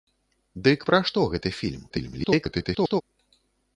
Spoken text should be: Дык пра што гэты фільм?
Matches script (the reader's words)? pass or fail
fail